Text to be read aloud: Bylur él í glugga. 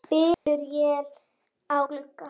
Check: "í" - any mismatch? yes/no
yes